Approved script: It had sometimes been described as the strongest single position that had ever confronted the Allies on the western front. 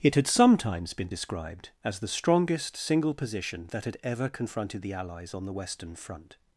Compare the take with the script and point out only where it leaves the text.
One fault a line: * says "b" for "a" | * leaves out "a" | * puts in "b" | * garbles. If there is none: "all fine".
all fine